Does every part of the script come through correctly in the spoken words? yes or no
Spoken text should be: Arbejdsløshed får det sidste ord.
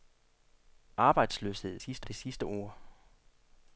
no